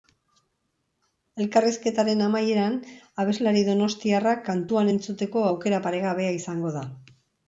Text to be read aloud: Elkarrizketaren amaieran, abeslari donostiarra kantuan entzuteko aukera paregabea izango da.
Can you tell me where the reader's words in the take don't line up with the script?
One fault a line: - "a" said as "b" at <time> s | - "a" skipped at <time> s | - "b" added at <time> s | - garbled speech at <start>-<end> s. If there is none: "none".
none